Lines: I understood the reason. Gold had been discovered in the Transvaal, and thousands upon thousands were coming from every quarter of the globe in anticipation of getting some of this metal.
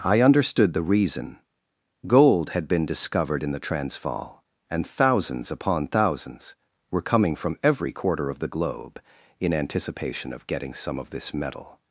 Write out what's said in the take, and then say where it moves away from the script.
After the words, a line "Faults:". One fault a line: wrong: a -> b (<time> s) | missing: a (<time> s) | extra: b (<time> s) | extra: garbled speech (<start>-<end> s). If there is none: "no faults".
I understood the reason. Gold had been discovered in the Transvaal, and thousands upon thousands were coming from every quarter of the globe in anticipation of getting some of this metal.
Faults:
no faults